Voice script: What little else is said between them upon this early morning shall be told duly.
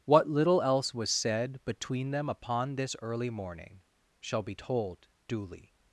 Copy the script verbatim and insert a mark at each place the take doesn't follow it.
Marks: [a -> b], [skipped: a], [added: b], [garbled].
What little else [is -> was] said between them upon this early morning shall be told duly.